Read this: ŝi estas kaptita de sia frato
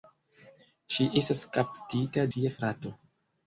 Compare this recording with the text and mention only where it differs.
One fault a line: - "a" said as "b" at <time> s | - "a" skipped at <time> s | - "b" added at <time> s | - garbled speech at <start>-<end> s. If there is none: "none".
- "de" skipped at 2.3 s